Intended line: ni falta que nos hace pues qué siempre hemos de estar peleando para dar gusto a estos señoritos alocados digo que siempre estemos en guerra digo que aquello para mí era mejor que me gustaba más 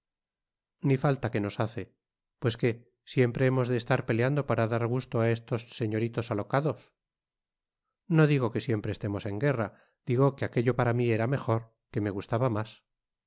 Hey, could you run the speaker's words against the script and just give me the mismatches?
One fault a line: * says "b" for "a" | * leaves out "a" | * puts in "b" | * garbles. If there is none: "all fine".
* puts in "no"